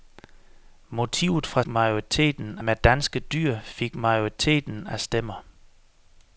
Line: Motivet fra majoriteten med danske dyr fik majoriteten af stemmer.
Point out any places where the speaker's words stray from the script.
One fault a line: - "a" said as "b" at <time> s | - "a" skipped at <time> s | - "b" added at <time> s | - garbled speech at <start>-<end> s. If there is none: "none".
none